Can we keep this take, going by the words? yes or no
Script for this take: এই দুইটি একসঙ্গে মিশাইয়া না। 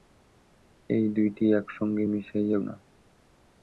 yes